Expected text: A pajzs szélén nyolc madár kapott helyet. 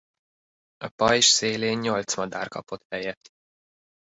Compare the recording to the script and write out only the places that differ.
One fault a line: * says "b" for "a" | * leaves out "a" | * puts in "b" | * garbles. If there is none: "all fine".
all fine